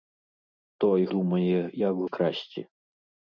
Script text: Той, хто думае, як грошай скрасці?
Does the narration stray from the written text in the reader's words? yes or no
yes